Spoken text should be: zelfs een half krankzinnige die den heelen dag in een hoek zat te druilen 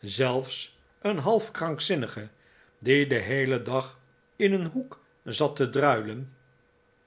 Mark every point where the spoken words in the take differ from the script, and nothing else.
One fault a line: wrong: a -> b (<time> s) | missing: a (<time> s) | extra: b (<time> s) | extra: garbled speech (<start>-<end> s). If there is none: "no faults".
no faults